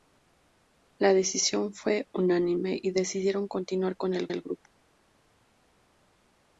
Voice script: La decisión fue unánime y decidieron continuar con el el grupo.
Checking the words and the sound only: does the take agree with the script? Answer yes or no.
yes